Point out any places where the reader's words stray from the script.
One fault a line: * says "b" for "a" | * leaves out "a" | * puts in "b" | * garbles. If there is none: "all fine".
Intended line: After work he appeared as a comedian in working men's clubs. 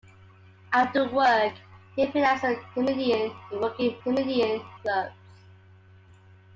* says "comedian" for "men's"